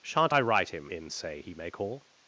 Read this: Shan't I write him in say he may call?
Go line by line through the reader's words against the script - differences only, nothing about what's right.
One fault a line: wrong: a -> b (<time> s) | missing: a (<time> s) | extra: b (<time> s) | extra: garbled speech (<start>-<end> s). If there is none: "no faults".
no faults